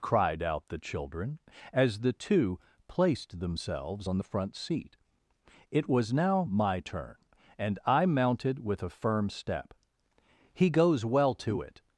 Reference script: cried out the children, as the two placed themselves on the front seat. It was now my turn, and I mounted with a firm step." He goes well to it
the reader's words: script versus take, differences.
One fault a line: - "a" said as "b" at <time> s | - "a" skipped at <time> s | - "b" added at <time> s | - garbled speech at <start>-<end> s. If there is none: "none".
none